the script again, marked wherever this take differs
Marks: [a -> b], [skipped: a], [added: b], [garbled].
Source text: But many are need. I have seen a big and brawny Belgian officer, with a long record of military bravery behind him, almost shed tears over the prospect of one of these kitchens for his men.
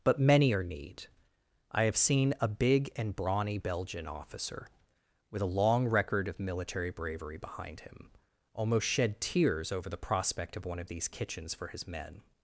But many are need. I have seen a big and brawny Belgian officer, with a long record of military bravery behind him, almost shed tears over the prospect of one of these kitchens for his men.